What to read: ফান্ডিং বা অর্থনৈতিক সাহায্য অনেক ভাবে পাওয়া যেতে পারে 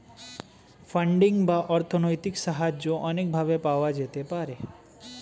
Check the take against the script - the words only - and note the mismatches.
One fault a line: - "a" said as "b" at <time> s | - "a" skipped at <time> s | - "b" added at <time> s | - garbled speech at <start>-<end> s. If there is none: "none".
none